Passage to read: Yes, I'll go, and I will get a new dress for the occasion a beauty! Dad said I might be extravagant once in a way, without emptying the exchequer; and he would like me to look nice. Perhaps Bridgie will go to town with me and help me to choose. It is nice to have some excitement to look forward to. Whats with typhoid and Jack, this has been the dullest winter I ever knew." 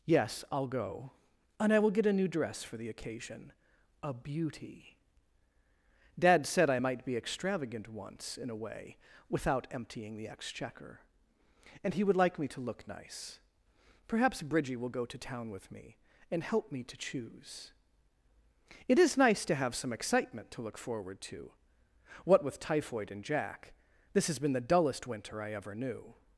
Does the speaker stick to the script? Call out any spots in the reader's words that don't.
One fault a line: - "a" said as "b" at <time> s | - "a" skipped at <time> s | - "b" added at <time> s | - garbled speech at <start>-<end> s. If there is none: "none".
- "Whats" said as "What" at 22.2 s